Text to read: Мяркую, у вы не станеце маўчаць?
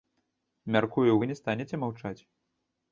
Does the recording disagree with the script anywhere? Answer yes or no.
no